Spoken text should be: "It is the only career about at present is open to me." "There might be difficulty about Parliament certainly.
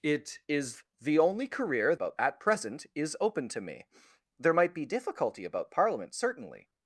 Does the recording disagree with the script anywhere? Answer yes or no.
no